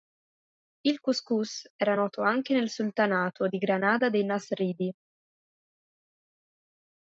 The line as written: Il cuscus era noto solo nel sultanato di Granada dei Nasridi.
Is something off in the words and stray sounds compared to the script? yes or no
yes